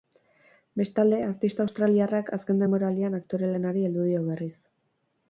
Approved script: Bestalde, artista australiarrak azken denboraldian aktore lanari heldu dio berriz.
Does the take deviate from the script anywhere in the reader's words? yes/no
no